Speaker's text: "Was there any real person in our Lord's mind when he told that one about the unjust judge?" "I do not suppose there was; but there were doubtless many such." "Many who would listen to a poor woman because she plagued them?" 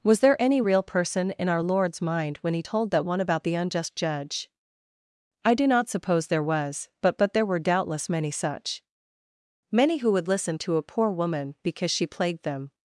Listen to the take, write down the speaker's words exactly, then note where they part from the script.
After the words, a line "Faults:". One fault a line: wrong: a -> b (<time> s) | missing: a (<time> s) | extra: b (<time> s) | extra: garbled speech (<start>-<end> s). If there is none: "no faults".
"Was there any real person in our Lord's mind when he told that one about the unjust judge?" "I do not suppose there was; but but there were doubtless many such." "Many who would listen to a poor woman because she plagued them?"
Faults:
extra: but (7.2 s)